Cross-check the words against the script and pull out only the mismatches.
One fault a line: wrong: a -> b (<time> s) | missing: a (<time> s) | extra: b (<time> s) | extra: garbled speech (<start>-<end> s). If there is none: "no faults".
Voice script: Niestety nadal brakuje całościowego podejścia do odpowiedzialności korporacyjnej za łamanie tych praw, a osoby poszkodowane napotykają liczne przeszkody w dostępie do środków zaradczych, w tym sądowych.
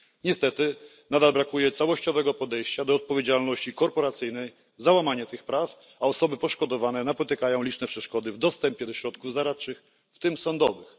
no faults